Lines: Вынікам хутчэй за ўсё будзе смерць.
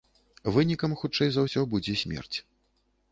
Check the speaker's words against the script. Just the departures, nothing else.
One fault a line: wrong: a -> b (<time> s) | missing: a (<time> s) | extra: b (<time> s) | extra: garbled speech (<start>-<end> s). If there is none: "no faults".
no faults